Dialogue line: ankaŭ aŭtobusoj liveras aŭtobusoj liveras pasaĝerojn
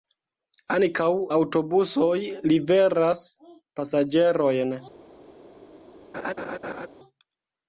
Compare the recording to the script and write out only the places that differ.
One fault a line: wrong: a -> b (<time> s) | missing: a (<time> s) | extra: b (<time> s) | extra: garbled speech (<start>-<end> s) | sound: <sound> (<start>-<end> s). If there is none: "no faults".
missing: aŭtobusoj liveras (3.2 s)
sound: laugh (6.1-6.9 s)